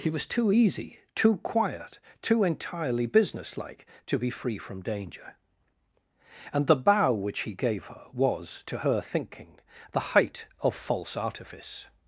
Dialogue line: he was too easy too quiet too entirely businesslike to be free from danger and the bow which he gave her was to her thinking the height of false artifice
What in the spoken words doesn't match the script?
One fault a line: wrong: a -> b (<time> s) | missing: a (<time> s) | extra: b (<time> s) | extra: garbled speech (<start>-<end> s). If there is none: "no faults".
no faults